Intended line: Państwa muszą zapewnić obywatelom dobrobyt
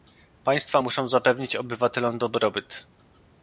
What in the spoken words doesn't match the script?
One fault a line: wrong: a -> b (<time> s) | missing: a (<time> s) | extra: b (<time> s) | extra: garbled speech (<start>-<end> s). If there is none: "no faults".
no faults